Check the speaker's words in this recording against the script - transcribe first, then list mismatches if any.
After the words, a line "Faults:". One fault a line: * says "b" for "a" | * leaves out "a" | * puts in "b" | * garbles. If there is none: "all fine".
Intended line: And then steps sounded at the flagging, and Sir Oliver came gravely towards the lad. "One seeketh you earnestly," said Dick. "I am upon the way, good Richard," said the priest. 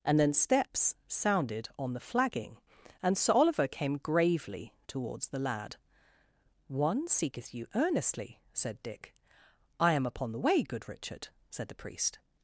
And then steps sounded on the flagging, and Sir Oliver came gravely towards the lad. "One seeketh you earnestly," said Dick. "I am upon the way, good Richard," said the priest.
Faults:
* says "on" for "at"